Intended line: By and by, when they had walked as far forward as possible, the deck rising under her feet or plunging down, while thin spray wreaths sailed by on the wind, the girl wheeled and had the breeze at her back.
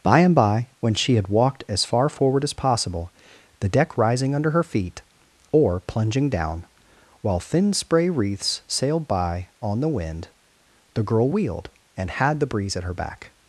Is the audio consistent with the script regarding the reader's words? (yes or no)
no